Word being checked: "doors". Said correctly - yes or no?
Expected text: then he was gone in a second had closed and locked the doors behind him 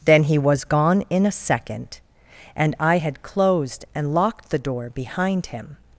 no